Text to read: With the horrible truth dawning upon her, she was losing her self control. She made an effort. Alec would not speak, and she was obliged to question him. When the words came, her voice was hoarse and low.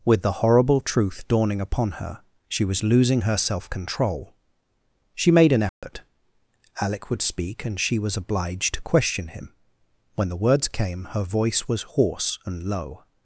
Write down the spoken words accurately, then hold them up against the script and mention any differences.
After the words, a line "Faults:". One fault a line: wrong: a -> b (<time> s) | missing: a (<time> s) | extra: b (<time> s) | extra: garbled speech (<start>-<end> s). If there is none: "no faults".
With the horrible truth dawning upon her, she was losing her self control. She made an effort. Alec would speak, and she was obliged to question him. When the words came, her voice was hoarse and low.
Faults:
missing: not (7.2 s)